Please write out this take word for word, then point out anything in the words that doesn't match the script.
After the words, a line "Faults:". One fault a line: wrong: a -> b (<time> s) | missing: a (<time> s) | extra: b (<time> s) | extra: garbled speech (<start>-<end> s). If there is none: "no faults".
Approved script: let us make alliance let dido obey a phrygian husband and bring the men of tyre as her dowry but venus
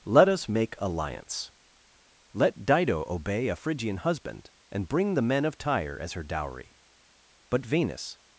let us make alliance let dido obey a phrygian husband and bring the men of tyre as her dowry but venus
Faults:
no faults